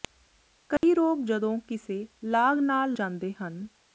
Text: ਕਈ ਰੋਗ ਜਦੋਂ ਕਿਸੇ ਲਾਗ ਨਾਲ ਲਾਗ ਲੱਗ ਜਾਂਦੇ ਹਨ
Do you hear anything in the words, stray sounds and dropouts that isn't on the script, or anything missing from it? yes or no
yes